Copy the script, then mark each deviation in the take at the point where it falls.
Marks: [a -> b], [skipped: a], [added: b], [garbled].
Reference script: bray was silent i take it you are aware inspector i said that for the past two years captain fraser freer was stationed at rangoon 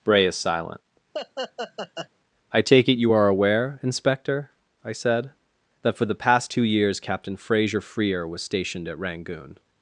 bray [was -> is] silent i take it you are aware inspector i said that for the past two years captain fraser freer was stationed at rangoon